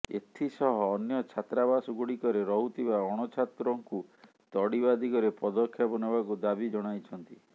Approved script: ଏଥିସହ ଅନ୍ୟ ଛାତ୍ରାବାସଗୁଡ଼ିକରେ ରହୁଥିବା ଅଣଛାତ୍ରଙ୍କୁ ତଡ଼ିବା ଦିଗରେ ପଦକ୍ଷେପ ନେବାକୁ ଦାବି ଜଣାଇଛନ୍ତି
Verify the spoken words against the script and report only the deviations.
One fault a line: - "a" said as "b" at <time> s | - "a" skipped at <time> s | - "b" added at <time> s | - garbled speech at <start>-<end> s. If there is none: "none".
none